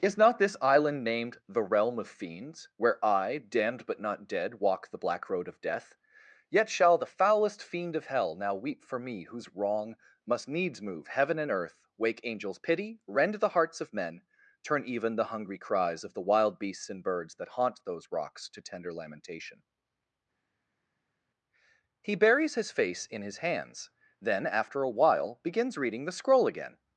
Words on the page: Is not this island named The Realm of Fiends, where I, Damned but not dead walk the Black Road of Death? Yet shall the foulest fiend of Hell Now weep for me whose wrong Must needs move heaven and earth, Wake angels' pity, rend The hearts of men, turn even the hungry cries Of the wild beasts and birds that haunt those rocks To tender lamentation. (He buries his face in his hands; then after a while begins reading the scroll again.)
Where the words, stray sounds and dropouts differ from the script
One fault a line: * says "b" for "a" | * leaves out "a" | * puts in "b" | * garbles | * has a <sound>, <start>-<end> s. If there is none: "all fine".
all fine